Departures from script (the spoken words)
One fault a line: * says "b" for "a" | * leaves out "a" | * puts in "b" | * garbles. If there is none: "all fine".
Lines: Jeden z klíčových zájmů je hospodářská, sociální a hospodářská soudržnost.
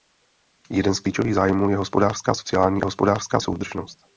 all fine